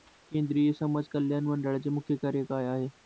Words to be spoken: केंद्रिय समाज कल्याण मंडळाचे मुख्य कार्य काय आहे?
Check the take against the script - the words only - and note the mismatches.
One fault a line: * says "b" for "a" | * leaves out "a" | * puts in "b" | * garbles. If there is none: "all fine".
all fine